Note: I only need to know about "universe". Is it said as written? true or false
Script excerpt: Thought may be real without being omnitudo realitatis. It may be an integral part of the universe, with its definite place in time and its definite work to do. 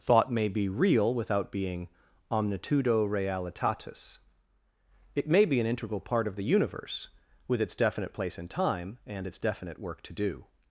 true